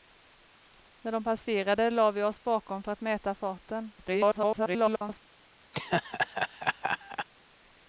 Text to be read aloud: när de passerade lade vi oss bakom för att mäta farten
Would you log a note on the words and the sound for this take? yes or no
yes